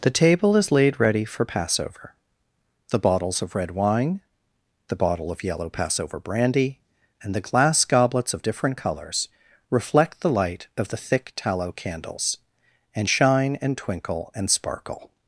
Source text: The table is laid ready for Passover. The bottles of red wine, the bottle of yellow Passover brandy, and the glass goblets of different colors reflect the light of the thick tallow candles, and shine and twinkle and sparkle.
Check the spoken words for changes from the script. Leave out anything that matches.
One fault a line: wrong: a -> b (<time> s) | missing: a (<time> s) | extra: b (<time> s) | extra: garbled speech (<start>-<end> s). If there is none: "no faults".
no faults